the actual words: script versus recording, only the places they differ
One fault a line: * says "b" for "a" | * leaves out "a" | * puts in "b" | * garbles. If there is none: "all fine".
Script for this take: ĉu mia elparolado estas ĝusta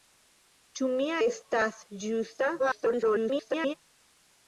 * leaves out "elparolado"
* garbles